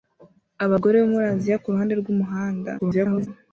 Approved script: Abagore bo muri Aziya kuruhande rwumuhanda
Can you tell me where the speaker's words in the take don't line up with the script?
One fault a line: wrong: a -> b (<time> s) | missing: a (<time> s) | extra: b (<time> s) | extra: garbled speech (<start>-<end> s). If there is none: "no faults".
extra: garbled speech (2.8-3.3 s)